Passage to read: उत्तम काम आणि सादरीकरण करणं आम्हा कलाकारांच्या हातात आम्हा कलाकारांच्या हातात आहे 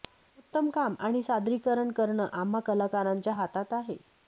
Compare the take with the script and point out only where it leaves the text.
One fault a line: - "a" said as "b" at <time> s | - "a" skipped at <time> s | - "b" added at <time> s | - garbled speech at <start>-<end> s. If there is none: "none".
- "आम्हा कलाकारांच्या हातात" skipped at 3.7 s